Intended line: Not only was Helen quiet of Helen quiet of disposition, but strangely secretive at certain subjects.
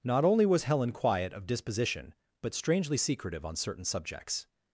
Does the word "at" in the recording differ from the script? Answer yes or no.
yes